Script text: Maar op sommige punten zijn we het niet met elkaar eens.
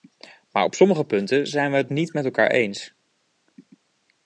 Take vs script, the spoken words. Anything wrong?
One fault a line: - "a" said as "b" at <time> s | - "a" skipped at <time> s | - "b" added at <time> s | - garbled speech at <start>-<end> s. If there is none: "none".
none